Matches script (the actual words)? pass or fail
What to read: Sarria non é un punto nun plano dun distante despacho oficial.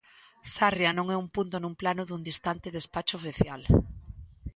pass